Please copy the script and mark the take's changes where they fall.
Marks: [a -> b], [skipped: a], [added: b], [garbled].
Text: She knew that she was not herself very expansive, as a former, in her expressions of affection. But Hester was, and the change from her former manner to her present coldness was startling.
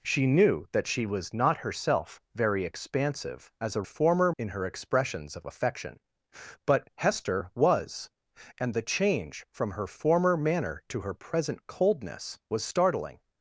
She knew that she was not herself very expansive, as a former, in her expressions of affection. But Hester was, and the change from her former manner to her present coldness was startling.